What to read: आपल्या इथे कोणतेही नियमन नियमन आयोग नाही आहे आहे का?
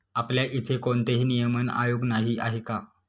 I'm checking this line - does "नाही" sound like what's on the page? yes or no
yes